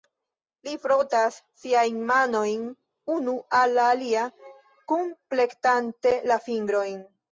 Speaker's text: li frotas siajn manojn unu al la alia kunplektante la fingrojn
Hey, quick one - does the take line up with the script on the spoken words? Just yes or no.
yes